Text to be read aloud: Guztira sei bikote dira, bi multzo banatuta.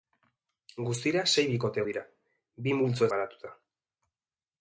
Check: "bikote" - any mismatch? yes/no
no